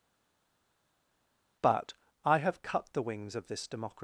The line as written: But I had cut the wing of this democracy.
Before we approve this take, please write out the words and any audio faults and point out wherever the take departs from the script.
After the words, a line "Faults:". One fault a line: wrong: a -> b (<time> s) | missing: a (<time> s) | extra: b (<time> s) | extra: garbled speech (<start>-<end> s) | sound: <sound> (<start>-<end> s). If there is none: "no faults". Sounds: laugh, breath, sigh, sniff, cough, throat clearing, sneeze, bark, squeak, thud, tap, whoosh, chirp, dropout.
But I have cut the wings of this democracy.
Faults:
wrong: had -> have (2.4 s)
wrong: wing -> wings (3.0 s)